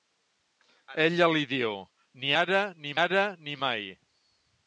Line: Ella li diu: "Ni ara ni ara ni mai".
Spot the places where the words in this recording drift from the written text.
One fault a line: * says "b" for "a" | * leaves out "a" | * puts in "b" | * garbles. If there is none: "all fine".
all fine